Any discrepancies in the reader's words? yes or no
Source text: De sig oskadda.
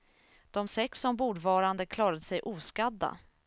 yes